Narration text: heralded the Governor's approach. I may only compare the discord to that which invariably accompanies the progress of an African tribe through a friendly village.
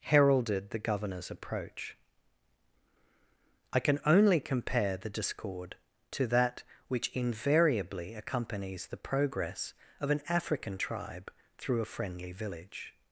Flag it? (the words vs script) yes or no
yes